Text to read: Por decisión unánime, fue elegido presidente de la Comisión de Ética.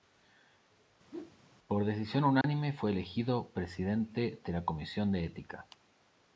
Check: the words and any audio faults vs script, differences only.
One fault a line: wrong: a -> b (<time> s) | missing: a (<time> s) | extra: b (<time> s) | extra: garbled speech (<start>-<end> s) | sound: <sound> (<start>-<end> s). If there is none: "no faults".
sound: whoosh (1.1-1.4 s)
sound: dropout (2.4-2.4 s)